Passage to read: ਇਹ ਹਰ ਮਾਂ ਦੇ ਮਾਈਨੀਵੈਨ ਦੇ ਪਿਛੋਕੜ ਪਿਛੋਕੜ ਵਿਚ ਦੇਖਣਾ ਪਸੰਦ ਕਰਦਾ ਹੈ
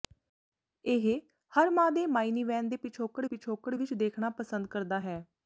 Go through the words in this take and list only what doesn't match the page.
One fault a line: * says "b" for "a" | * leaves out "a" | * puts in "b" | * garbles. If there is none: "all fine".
all fine